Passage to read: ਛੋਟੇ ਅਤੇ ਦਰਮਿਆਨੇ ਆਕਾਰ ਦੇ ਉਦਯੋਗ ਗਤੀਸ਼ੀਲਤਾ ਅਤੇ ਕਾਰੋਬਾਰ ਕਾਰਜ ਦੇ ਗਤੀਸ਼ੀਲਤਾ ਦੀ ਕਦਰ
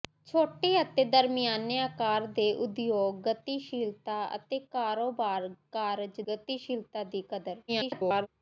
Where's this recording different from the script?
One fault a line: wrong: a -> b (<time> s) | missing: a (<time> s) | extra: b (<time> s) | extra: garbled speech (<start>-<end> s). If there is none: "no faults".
missing: ਦੇ (6.2 s)
extra: garbled speech (7.7-8.3 s)